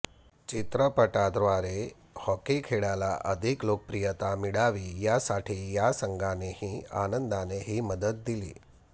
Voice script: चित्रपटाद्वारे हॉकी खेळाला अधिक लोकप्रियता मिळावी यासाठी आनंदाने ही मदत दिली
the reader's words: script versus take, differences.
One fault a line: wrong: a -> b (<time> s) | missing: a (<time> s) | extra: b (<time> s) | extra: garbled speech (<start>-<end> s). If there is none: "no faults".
extra: या संघानेही (5.7 s)